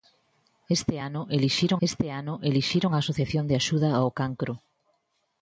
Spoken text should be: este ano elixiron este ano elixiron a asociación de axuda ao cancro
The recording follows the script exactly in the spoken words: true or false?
true